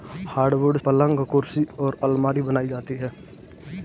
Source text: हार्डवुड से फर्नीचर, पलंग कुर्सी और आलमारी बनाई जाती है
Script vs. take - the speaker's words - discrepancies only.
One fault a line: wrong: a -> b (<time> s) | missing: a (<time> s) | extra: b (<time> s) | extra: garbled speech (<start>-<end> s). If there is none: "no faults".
missing: से फर्नीचर (0.8 s)